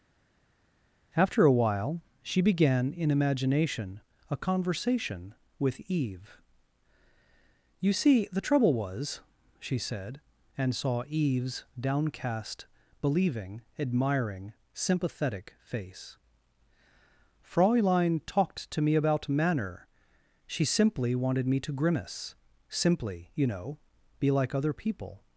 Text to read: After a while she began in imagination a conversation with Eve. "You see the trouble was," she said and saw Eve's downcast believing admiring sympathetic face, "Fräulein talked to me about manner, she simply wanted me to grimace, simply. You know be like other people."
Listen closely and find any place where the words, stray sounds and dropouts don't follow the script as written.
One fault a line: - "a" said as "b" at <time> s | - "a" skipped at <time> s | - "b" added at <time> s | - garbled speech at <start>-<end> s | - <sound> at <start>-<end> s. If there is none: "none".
none